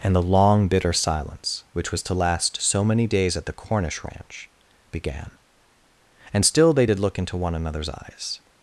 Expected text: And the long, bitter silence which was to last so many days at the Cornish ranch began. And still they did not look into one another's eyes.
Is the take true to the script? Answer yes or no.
no